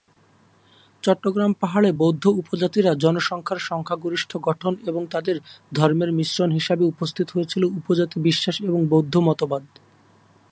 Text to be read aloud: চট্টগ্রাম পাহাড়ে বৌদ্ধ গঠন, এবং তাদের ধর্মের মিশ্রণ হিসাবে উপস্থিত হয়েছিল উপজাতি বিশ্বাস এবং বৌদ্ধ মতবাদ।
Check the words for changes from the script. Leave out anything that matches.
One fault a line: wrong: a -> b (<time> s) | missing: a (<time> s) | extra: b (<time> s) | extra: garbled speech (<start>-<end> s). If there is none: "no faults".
extra: উপজাতিরা জনসংখ্যার সংখ্যাগরিষ্ঠ (2.4 s)